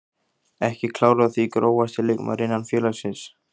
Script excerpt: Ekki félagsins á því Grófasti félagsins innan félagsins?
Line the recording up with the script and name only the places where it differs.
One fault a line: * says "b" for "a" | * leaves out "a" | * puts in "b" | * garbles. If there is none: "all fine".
* says "klár" for "félagsins"
* says "leikmaður" for "félagsins"